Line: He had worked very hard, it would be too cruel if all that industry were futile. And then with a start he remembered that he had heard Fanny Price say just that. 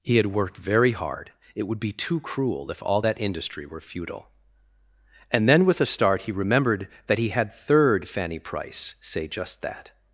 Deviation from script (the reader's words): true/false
true